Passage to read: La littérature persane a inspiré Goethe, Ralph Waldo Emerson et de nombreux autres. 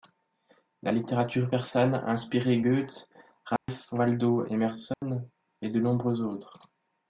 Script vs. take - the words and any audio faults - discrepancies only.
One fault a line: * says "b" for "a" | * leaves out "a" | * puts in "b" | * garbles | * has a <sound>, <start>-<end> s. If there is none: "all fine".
* has a dropout, 3.6-3.7 s
* has a dropout, 4.9-5.0 s